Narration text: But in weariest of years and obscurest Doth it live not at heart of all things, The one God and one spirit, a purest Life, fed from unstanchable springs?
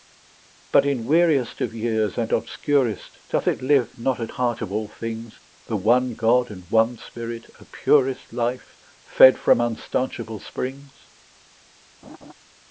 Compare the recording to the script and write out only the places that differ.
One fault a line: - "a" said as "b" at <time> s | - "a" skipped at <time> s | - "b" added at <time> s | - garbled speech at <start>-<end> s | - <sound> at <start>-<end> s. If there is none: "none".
- laugh at 12.0-12.3 s